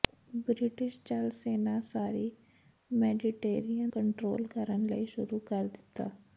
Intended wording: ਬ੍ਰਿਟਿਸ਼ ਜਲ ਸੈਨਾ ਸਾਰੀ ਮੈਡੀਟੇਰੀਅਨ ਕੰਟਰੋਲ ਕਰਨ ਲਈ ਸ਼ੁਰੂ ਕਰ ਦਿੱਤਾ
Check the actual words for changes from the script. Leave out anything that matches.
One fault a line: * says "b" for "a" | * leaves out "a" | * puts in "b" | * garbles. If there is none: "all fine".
all fine